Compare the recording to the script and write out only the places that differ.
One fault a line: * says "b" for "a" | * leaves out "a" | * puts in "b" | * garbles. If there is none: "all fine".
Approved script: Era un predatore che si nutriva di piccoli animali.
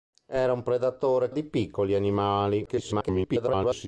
* leaves out "che si nutriva"
* garbles